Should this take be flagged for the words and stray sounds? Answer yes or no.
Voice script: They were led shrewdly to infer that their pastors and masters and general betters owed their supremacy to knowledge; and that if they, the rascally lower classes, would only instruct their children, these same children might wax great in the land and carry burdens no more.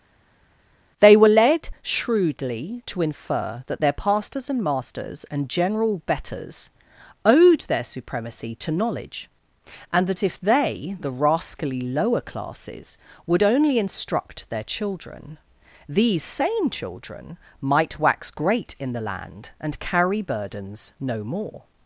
no